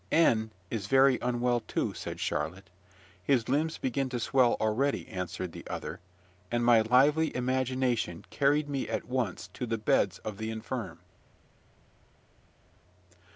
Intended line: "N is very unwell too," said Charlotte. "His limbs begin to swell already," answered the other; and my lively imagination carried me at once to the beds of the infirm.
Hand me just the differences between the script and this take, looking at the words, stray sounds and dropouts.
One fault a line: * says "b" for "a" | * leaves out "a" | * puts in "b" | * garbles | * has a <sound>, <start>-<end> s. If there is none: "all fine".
all fine